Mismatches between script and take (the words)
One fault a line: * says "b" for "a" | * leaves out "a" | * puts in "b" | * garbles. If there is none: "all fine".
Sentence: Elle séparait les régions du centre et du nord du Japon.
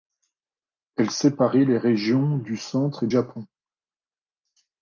* leaves out "du nord du"